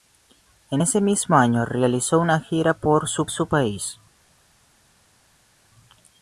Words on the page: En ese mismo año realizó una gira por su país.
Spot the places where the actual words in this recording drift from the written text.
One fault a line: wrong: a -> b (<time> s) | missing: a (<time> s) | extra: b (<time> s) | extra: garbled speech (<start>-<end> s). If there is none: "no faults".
extra: su (3.3 s)